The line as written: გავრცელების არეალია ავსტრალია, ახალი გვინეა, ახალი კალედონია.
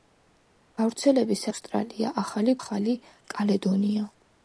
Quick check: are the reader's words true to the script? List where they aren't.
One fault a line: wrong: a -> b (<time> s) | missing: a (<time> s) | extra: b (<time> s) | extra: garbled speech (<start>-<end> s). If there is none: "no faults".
missing: არეალია (1.4 s)
missing: გვინეა (2.6 s)